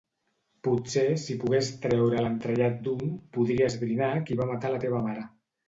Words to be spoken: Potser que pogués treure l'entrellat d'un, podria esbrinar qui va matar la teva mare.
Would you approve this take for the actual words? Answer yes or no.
no